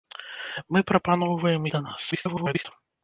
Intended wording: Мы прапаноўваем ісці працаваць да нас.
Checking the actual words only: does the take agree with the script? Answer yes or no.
no